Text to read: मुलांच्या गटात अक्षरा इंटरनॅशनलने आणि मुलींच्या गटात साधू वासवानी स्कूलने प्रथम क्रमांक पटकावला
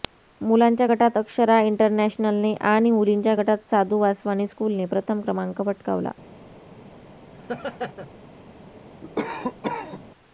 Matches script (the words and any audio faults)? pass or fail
fail